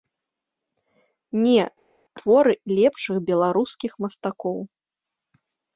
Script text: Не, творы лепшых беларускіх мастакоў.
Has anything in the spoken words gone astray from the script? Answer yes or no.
no